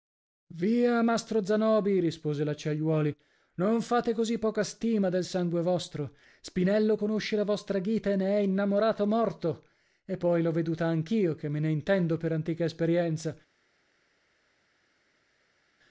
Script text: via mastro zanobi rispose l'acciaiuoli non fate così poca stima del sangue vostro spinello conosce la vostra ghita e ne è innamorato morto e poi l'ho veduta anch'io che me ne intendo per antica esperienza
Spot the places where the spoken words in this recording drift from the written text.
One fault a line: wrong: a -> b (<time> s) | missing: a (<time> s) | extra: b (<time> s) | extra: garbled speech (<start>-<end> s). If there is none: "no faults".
no faults